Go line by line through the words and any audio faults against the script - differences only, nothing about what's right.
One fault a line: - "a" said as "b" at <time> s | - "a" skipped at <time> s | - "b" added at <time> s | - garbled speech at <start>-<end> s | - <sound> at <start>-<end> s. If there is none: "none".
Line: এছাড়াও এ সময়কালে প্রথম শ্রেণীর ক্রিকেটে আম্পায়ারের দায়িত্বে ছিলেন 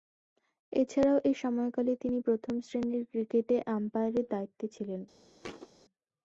- "তিনি" added at 2.0 s
- thud at 5.4-5.7 s